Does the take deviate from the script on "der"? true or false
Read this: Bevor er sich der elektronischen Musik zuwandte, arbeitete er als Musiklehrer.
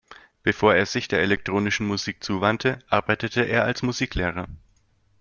false